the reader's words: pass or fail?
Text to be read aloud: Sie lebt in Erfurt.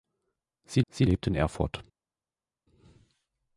fail